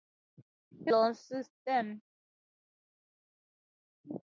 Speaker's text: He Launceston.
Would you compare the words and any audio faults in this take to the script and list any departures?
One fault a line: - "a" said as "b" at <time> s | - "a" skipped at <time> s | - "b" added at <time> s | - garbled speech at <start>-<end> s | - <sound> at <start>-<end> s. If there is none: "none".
none